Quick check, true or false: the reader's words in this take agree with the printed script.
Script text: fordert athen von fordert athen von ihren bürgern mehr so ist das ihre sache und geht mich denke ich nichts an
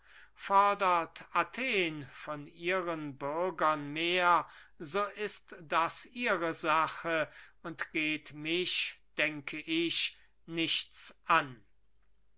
false